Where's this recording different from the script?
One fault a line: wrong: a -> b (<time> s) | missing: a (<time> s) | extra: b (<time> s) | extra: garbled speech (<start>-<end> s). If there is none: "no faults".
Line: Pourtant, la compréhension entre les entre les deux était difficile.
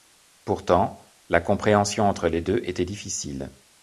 missing: entre les (2.4 s)